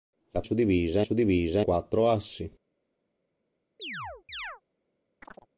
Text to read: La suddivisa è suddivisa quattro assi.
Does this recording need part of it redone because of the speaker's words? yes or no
no